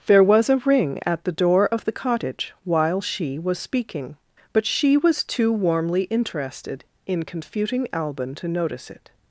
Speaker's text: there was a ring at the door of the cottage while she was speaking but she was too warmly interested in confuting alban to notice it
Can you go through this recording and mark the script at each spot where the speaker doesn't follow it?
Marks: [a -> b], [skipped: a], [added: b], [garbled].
there was a ring at the door of the cottage while she was speaking but she was too warmly interested in confuting alban to notice it